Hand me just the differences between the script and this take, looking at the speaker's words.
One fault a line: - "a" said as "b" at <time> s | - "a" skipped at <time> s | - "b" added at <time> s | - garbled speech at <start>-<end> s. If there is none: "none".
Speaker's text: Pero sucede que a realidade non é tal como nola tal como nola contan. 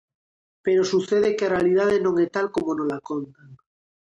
- "tal como nola" skipped at 3.0 s